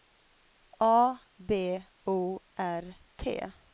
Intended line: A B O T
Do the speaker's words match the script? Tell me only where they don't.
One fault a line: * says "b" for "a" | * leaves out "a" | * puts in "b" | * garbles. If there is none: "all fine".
* puts in "R"